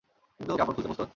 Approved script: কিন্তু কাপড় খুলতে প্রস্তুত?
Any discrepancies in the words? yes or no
no